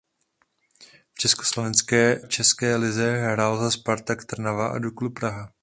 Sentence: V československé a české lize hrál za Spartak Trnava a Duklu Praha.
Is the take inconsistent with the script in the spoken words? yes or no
yes